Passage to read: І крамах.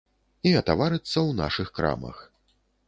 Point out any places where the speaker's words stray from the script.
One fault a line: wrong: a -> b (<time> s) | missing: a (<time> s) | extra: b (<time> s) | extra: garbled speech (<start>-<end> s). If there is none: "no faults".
extra: атаварыцца ў нашых (0.6 s)